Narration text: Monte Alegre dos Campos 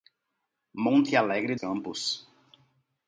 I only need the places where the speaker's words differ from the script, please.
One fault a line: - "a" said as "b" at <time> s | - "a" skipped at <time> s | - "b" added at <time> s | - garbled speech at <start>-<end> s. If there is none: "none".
- "dos" skipped at 1.6 s